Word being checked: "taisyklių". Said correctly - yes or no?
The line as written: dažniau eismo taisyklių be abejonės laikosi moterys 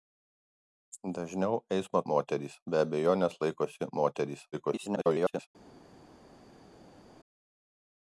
no